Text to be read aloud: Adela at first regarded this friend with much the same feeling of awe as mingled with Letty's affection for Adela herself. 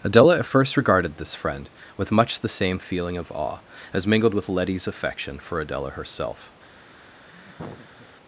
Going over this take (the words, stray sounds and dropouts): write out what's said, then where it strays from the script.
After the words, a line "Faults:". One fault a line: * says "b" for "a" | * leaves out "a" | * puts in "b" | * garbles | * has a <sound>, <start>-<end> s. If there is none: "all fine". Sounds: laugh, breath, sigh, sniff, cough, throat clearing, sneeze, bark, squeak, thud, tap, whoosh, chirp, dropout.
Adela at first regarded this friend with much the same feeling of awe as mingled with Letty's affection for Adela herself.
Faults:
* has a laugh, 7.2-8.1 s